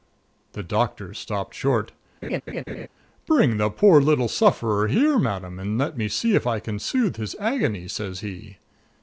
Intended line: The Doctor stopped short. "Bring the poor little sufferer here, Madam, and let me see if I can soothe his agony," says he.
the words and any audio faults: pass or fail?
fail